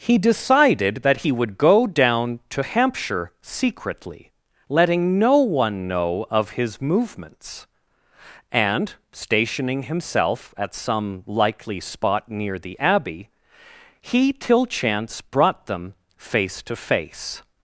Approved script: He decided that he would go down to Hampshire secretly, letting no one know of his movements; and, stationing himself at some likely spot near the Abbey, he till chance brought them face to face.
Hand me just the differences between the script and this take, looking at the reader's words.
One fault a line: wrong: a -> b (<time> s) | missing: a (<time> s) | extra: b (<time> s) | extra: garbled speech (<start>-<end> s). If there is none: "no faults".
no faults